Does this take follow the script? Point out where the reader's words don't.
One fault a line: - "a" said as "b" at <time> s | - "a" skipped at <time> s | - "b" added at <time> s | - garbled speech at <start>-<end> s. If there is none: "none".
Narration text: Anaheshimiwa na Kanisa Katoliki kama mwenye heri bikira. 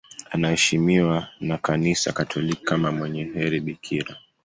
none